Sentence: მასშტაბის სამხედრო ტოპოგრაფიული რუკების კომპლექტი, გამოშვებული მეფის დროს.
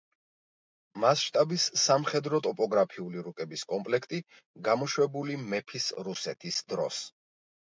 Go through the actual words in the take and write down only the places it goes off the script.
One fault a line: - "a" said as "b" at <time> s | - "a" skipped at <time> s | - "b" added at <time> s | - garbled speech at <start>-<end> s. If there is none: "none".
- "რუსეთის" added at 6.1 s